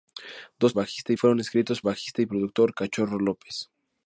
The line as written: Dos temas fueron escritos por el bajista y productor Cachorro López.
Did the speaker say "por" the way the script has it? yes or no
no